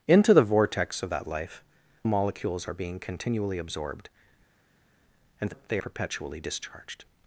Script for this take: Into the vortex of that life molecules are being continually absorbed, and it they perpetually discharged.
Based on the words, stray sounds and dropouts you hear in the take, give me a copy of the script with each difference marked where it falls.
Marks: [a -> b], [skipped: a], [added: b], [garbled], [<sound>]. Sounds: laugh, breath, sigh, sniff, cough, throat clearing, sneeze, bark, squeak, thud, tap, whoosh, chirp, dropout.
Into the vortex of that life molecules are being continually absorbed, and it they perpetually discharged.